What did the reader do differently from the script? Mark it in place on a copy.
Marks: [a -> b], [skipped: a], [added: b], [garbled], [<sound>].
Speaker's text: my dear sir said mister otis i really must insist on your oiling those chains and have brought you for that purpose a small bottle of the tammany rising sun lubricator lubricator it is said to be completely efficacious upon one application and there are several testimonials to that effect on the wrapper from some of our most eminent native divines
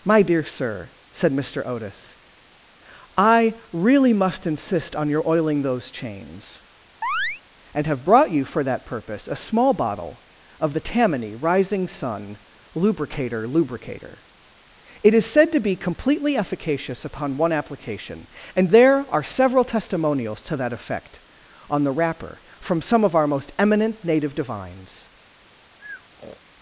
my dear sir said mister otis i really must insist on your oiling those chains [chirp] and have brought you for that purpose a small bottle of the tammany rising sun lubricator lubricator it is said to be completely efficacious upon one application and there are several testimonials to that effect on the wrapper from some of our most eminent native divines [breath]